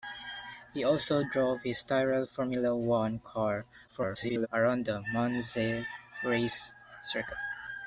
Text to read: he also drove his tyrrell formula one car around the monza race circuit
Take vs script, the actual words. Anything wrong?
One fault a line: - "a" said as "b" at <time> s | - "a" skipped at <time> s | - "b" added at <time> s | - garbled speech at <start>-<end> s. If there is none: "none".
- garbled speech at 3.9-4.5 s